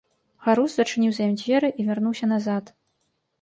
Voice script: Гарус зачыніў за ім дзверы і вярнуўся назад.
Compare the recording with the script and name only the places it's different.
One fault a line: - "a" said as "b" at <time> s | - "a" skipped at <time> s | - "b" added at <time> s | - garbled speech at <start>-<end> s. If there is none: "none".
none